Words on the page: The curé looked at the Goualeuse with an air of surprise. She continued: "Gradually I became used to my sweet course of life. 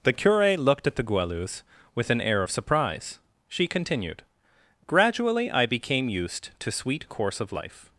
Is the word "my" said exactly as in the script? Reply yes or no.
no